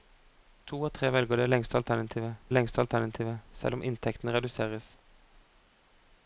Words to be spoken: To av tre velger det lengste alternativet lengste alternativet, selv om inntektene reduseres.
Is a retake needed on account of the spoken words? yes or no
no